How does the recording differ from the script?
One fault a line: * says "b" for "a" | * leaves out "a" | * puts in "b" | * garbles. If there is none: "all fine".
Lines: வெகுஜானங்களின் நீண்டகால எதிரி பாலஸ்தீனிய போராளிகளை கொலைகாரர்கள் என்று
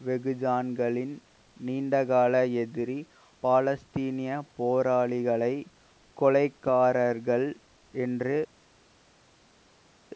all fine